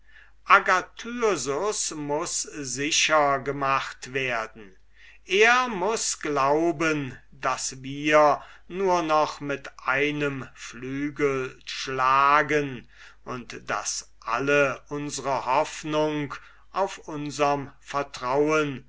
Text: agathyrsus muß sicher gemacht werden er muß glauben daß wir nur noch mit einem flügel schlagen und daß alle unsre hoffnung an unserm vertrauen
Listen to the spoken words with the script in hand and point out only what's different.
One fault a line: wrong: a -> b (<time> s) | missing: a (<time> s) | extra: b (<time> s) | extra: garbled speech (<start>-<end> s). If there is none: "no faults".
wrong: an -> auf (16.7 s)